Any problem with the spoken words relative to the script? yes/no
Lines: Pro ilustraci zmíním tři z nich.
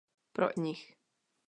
yes